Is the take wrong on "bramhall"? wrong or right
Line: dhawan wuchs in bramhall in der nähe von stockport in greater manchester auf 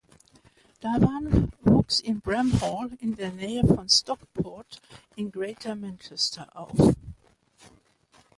right